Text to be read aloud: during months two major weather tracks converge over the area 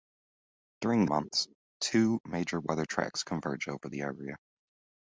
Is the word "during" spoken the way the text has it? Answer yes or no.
yes